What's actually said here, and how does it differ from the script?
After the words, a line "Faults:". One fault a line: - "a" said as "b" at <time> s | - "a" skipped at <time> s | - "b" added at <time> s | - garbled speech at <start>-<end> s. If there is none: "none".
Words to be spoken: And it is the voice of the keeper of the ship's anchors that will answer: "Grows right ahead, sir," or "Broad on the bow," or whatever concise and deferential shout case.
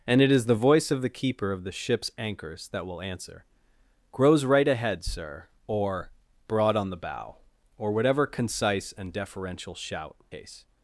And it is the voice of the keeper of the ship's anchors that will answer: "Grows right ahead, sir," or "Broad on the bow," or whatever concise and deferential shout case.
Faults:
none